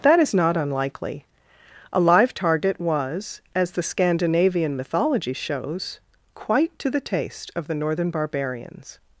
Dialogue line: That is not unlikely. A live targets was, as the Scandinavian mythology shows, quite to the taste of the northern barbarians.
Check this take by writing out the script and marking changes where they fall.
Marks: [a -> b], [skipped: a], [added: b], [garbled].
That is not unlikely. A live [targets -> target] was, as the Scandinavian mythology shows, quite to the taste of the northern barbarians.